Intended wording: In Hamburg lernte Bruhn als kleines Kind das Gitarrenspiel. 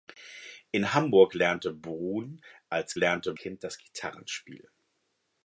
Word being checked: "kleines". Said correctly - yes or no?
no